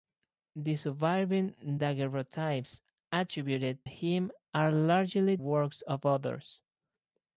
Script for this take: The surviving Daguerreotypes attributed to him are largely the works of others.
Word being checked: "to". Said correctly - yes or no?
no